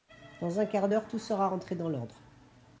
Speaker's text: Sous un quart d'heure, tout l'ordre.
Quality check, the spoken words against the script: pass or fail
fail